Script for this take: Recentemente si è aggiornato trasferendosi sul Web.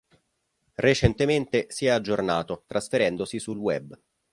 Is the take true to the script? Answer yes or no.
yes